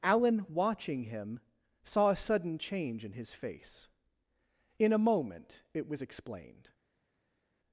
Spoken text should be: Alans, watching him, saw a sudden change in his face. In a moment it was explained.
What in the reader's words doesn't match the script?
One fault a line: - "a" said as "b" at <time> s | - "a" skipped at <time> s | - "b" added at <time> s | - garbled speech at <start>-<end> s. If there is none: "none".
- "Alans" said as "Alan" at 0.0 s